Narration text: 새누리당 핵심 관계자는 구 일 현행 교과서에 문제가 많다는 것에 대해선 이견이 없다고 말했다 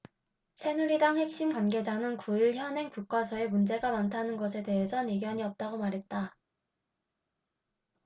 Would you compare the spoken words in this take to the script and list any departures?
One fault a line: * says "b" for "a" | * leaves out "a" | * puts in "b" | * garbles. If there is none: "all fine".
all fine